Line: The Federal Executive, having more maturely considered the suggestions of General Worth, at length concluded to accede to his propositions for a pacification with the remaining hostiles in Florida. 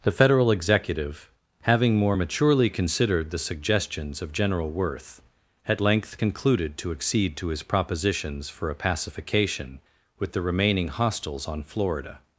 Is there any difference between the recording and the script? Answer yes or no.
yes